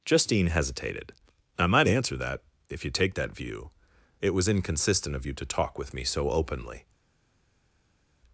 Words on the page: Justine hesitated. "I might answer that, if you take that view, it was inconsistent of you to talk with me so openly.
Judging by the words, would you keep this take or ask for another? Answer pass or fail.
pass